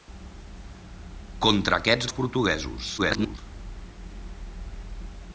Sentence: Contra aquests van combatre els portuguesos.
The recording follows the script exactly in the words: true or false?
false